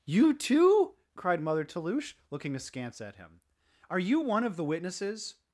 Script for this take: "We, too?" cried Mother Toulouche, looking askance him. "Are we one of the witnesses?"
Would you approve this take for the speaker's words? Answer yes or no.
no